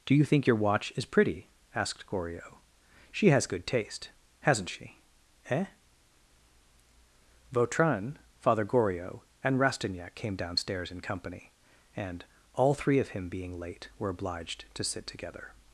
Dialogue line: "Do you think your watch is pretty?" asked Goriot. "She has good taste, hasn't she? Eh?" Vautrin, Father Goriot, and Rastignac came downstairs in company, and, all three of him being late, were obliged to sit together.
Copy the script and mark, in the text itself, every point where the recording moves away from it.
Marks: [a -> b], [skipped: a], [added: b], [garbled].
"Do you think your watch is pretty?" asked Goriot. "She has good taste, hasn't she? Eh?" Vautrin, Father Goriot, and Rastignac came downstairs in company, and, all three of him being late, were obliged to sit together.